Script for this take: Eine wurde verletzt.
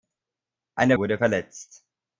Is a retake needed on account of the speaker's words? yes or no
no